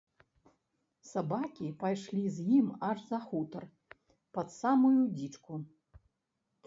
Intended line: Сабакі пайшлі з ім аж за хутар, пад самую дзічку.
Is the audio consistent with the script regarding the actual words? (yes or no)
yes